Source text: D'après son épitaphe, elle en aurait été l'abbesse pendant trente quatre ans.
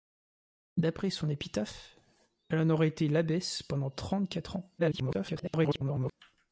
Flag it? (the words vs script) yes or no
yes